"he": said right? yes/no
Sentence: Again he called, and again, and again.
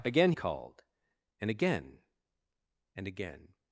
no